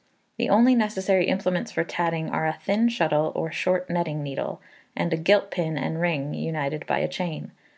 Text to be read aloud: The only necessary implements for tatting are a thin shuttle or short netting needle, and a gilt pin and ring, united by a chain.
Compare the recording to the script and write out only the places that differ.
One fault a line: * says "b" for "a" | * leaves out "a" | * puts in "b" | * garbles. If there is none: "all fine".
all fine